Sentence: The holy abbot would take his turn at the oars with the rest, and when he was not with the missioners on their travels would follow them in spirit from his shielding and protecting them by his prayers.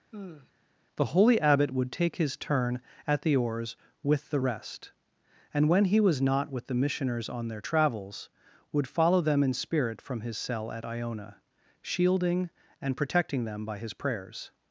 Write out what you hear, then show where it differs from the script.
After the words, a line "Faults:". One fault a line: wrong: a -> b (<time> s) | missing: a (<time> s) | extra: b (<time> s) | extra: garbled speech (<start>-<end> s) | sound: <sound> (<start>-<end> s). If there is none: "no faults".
The holy abbot would take his turn at the oars with the rest, and when he was not with the missioners on their travels would follow them in spirit from his cell at Iona, shielding and protecting them by his prayers.
Faults:
sound: sigh (0.1-0.5 s)
extra: cell at Iona (10.4 s)